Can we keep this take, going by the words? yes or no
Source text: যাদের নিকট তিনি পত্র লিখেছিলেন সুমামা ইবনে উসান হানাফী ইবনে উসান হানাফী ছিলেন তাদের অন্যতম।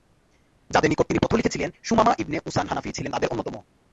no